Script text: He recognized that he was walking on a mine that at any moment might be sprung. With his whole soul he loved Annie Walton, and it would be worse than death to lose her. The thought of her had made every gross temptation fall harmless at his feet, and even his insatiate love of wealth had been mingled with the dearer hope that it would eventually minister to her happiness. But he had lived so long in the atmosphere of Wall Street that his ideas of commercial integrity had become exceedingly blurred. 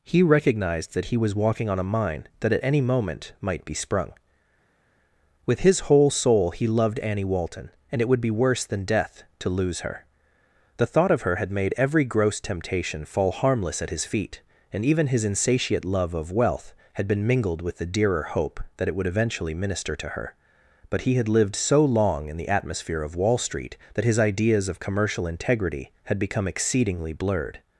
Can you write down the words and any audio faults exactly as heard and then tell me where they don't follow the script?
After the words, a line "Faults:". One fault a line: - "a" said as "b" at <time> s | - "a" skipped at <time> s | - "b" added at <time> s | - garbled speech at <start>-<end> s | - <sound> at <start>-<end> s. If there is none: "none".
He recognized that he was walking on a mine that at any moment might be sprung. With his whole soul he loved Annie Walton, and it would be worse than death to lose her. The thought of her had made every gross temptation fall harmless at his feet, and even his insatiate love of wealth had been mingled with the dearer hope that it would eventually minister to her. But he had lived so long in the atmosphere of Wall Street that his ideas of commercial integrity had become exceedingly blurred.
Faults:
- "happiness" skipped at 20.3 s